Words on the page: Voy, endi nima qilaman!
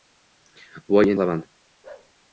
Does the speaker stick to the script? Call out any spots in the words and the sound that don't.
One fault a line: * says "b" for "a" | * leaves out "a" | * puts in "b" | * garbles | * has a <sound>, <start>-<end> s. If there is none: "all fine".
* leaves out "endi nima"
* has a bark, 1.8-2.1 s